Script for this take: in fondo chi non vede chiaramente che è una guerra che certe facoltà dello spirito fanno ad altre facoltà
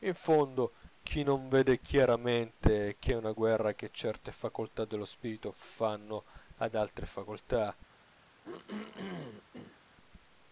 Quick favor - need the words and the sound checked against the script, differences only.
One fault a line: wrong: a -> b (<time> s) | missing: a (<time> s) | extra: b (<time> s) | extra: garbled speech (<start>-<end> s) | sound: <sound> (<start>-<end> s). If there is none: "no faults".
sound: throat clearing (8.4-9.8 s)